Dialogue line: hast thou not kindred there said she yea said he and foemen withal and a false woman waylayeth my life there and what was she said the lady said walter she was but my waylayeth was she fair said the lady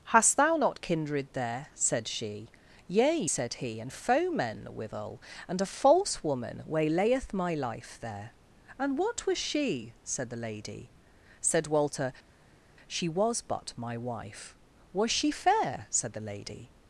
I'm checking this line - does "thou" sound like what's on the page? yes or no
yes